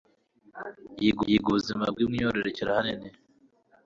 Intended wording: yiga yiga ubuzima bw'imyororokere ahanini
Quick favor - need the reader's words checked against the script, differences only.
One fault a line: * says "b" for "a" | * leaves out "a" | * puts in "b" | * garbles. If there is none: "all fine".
all fine